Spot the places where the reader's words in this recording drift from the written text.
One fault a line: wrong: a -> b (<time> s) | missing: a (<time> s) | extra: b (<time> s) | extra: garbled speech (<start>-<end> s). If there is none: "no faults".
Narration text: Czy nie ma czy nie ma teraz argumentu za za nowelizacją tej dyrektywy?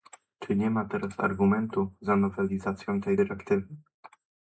missing: czy nie ma (0.8 s)
missing: za (2.1 s)